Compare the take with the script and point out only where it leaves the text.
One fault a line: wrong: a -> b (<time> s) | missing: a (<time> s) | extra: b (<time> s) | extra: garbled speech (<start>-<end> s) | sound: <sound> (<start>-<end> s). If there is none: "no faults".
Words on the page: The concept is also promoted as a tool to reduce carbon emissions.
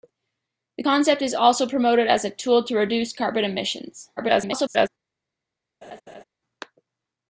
extra: garbled speech (4.2-4.9 s)
sound: laugh (5.8-6.2 s)